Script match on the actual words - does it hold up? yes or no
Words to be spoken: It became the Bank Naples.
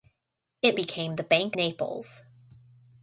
yes